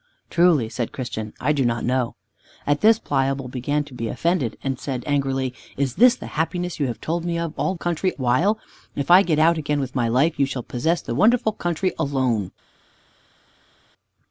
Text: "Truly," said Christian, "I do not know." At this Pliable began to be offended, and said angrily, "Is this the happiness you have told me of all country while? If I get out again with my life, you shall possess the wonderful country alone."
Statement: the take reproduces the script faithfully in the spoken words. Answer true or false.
true